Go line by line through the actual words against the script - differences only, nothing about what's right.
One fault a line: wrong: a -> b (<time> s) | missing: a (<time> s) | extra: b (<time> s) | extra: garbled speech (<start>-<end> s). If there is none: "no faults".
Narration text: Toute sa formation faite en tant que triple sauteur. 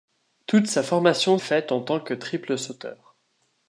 no faults